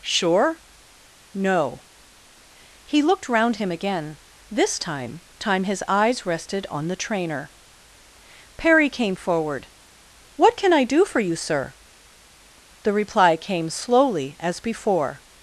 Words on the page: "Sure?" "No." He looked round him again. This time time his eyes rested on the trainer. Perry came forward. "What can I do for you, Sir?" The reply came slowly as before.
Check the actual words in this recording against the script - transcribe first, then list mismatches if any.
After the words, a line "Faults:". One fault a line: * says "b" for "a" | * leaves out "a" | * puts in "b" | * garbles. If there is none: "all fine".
"Sure?" "No." He looked round him again. This time time his eyes rested on the trainer. Perry came forward. "What can I do for you, Sir?" The reply came slowly as before.
Faults:
all fine